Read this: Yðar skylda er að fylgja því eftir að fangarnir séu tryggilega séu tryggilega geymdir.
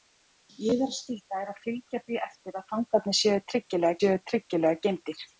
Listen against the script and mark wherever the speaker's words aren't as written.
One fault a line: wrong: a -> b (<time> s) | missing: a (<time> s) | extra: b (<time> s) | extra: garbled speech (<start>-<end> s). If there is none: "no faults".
no faults